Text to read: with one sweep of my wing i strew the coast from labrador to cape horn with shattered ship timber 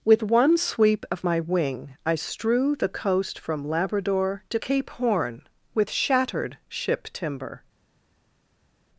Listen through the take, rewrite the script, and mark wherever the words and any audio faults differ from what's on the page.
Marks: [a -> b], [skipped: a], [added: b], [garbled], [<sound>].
with one sweep of my wing i strew the coast from labrador to cape horn with shattered ship timber